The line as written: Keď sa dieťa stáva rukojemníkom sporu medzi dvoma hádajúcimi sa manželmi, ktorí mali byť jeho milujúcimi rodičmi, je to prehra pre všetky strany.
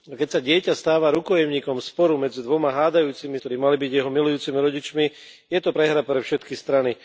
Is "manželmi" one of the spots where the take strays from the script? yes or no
yes